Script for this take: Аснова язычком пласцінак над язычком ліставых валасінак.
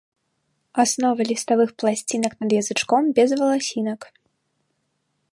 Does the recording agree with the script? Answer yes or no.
no